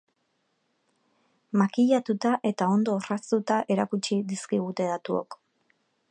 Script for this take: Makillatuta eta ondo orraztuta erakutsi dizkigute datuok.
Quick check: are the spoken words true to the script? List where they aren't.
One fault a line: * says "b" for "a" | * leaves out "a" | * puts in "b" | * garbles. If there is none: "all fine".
all fine